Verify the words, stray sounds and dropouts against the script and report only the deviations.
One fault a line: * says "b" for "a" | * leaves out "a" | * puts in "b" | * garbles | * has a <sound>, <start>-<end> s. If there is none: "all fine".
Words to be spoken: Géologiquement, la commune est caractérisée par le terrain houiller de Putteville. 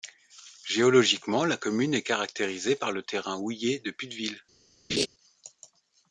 * has a laugh, 4.9-5.1 s